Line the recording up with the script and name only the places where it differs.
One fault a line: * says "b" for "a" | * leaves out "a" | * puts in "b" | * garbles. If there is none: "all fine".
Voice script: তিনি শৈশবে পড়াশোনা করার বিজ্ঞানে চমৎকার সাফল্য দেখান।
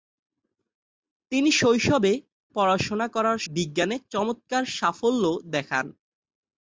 all fine